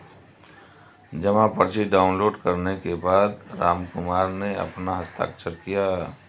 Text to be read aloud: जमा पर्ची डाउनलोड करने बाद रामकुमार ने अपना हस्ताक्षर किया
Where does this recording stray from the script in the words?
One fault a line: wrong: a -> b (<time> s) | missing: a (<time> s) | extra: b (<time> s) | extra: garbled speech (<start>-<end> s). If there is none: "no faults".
extra: के (2.8 s)